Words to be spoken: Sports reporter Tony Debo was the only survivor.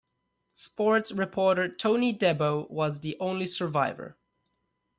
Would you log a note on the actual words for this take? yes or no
no